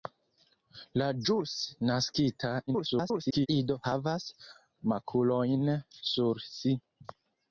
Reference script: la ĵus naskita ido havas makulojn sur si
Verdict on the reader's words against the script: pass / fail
fail